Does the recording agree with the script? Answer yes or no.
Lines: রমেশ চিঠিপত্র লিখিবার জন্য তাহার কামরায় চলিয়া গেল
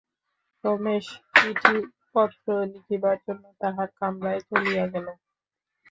yes